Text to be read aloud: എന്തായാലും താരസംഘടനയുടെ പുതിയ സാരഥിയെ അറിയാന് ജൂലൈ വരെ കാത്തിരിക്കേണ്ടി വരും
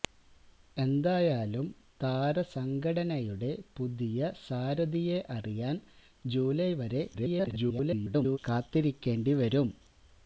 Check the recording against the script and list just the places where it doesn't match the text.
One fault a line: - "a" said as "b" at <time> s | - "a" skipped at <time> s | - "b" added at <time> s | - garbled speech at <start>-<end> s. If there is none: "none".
- garbled speech at 7.1-8.4 s